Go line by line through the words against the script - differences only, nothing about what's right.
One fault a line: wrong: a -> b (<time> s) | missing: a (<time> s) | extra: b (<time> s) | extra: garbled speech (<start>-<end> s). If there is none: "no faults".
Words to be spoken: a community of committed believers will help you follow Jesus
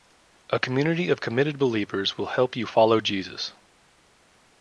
no faults